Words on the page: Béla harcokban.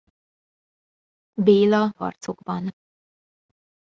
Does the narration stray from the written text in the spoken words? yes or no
no